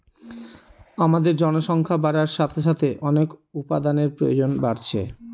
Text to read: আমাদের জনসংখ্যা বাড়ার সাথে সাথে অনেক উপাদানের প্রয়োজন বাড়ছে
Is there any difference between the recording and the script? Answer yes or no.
no